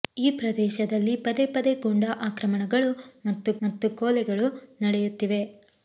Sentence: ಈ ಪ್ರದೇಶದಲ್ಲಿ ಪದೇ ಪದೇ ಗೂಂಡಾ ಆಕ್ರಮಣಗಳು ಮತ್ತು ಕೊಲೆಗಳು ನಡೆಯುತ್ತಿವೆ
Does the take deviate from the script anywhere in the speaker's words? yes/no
yes